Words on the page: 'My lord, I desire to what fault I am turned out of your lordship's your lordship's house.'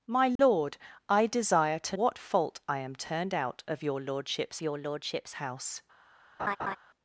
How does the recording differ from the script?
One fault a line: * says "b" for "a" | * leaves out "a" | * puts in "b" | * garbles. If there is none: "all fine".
all fine